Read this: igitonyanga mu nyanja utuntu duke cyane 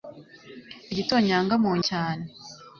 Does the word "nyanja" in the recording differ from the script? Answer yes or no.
yes